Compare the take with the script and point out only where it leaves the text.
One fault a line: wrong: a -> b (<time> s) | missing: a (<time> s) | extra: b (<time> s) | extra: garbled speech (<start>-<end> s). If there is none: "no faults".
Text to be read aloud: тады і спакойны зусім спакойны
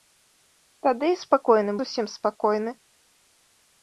no faults